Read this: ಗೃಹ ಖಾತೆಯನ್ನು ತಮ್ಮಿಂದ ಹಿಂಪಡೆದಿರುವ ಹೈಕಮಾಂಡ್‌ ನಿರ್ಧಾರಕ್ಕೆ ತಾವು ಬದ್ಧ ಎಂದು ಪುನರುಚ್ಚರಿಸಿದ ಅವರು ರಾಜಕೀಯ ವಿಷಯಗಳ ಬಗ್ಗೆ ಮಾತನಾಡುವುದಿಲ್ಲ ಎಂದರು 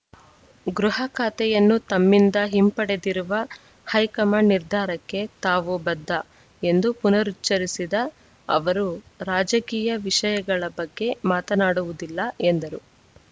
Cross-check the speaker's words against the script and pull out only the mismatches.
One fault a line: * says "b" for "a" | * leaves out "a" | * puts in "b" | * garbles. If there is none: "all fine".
all fine